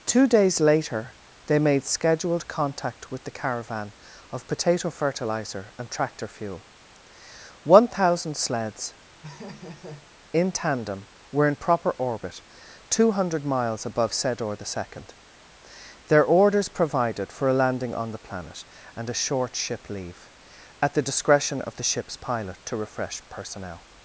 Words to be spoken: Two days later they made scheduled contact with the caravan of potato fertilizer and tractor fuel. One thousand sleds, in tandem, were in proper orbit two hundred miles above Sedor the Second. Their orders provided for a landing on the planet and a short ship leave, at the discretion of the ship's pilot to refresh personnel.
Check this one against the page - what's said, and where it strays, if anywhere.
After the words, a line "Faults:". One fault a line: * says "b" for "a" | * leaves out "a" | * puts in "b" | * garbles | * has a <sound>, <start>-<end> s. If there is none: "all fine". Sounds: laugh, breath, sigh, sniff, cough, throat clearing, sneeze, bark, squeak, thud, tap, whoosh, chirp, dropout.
Two days later they made scheduled contact with the caravan of potato fertilizer and tractor fuel. One thousand sleds, in tandem, were in proper orbit two hundred miles above Sedor the Second. Their orders provided for a landing on the planet and a short ship leave, at the discretion of the ship's pilot to refresh personnel.
Faults:
* has a laugh, 9.2-10.1 s